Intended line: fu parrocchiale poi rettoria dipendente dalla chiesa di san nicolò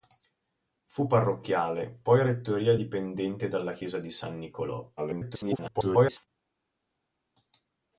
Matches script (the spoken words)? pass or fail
fail